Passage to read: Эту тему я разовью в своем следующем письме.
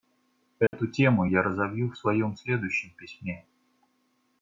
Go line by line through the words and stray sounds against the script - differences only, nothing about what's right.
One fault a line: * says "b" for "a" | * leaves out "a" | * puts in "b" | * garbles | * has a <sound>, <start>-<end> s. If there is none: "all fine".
* has a dropout, 0.7-0.7 s